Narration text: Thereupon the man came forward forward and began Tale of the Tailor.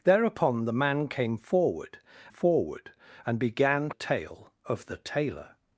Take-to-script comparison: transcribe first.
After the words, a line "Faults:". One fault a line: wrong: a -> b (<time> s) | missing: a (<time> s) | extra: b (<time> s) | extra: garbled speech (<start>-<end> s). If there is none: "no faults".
Thereupon the man came forward forward and began Tale of the Tailor.
Faults:
no faults